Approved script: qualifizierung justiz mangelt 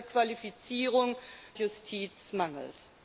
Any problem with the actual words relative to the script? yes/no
no